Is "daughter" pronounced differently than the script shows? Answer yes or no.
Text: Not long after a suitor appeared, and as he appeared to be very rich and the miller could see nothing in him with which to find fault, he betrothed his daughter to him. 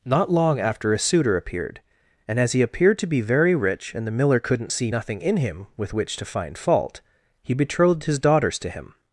yes